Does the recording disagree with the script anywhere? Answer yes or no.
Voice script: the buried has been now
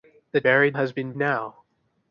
no